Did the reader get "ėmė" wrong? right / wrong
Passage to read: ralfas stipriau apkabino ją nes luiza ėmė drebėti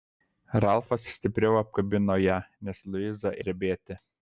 wrong